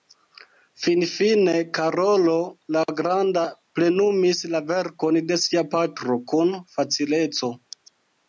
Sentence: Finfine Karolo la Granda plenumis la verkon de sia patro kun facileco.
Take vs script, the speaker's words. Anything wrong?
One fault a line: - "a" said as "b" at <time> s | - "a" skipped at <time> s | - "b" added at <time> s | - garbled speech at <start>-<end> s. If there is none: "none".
none